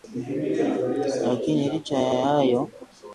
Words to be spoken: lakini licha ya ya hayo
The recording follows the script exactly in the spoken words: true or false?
true